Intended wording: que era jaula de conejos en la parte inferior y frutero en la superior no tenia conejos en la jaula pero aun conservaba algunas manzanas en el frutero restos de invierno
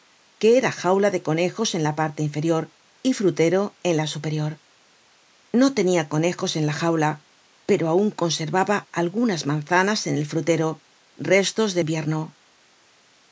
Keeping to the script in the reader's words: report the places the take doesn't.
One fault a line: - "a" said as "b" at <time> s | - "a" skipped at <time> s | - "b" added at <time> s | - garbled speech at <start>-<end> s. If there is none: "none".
none